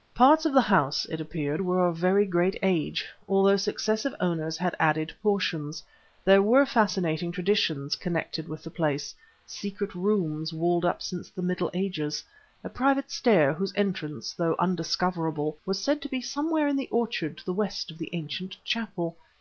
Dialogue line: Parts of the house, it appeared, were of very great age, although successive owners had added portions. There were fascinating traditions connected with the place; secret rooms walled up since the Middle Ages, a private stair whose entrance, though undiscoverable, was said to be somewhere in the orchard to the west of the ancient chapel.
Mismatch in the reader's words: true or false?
false